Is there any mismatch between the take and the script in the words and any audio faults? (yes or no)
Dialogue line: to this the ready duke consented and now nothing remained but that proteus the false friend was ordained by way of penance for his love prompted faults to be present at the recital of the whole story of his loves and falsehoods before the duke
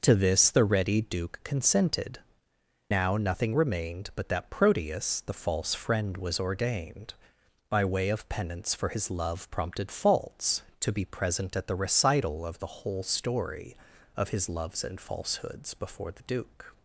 yes